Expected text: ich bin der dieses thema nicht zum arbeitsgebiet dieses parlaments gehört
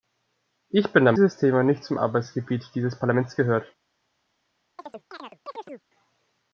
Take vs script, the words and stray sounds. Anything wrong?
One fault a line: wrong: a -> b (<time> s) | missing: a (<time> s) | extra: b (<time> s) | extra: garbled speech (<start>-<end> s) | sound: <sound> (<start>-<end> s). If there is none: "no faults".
sound: chirp (4.8-5.8 s)